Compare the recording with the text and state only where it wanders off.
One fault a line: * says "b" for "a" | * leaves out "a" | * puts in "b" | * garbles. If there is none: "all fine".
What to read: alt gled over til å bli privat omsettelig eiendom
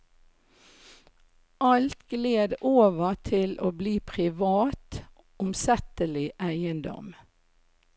all fine